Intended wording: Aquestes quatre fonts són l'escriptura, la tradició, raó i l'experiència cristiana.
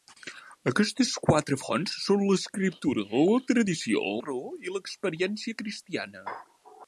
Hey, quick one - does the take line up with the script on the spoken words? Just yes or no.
yes